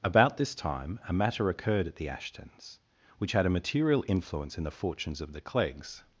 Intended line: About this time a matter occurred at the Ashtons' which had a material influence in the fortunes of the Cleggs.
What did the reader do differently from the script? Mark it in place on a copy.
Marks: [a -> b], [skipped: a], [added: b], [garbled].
About this time a matter occurred at the Ashtons' which had a material influence in the fortunes of the Cleggs.